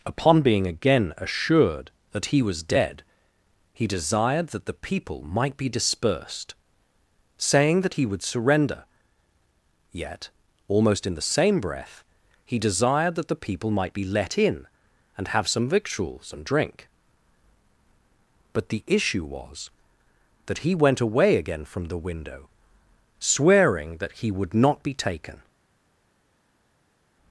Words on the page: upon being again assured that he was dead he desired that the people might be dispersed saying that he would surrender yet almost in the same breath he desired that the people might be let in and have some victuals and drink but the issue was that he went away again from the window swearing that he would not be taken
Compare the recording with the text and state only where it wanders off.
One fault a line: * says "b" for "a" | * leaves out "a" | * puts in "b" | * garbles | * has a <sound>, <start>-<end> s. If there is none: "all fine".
all fine